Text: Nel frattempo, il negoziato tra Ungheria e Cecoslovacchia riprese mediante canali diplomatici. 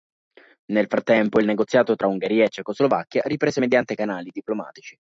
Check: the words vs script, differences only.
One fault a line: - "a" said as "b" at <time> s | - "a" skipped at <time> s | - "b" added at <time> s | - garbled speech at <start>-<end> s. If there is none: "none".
none